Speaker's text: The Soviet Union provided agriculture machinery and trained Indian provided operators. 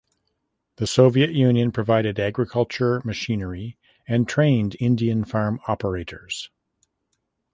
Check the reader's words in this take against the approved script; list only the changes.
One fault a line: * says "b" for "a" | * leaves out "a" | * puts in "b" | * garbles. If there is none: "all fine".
* says "farm" for "provided"